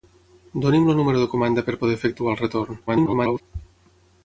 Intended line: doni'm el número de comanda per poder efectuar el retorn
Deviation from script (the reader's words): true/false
true